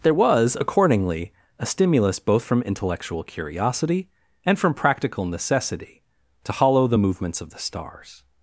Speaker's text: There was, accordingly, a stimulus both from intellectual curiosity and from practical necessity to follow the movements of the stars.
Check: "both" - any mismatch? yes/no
no